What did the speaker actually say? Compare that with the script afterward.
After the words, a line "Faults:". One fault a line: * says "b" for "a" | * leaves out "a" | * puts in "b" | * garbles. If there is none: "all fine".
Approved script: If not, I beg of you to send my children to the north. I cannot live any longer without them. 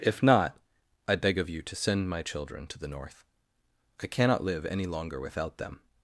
If not, I beg of you to send my children to the north. I cannot live any longer without them.
Faults:
all fine